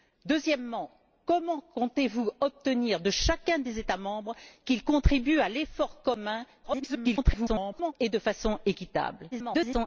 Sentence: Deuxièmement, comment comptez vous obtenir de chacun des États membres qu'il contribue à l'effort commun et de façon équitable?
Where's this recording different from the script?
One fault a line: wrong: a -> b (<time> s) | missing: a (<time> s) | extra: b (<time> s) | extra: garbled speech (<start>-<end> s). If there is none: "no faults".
extra: garbled speech (6.6-7.9 s)
extra: garbled speech (9.3-9.9 s)